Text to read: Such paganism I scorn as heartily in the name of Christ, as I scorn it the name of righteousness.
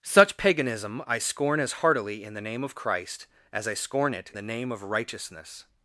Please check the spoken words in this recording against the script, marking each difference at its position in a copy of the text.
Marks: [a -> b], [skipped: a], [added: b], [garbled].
Such paganism I scorn as heartily in the name of Christ, as I scorn it the name of righteousness.